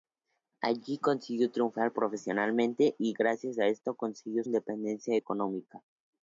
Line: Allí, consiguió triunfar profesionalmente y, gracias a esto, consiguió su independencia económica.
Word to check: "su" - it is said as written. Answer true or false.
false